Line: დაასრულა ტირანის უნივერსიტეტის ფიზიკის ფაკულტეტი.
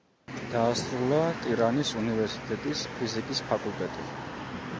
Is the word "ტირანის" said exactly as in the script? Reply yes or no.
yes